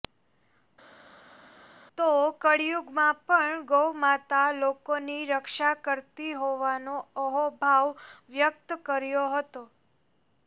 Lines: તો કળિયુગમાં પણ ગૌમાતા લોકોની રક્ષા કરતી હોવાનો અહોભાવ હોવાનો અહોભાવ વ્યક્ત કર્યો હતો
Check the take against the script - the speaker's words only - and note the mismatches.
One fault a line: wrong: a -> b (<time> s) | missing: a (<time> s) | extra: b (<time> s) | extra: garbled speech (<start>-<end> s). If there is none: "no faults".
missing: હોવાનો અહોભાવ (7.9 s)